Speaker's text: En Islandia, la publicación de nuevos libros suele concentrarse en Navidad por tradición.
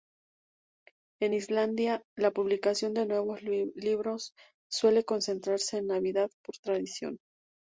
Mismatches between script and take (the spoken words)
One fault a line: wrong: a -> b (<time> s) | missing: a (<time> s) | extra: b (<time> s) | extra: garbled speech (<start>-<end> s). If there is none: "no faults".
no faults